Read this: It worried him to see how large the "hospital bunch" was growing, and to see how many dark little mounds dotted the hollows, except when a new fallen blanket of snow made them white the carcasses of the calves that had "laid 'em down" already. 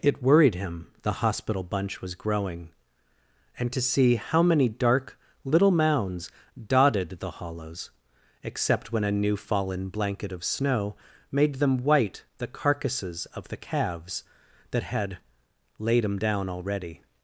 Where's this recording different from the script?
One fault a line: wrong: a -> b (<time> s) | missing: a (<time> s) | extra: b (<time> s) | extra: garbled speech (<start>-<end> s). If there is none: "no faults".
missing: to see how large (0.9 s)